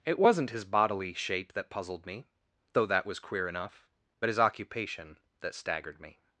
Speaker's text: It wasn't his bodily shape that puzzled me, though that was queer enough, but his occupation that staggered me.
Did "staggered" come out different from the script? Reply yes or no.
no